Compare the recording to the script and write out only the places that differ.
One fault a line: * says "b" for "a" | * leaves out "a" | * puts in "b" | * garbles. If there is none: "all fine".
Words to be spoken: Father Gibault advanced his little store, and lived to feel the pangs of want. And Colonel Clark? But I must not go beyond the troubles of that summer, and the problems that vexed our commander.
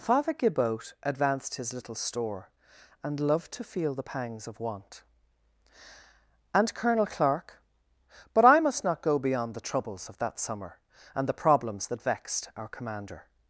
* says "loved" for "lived"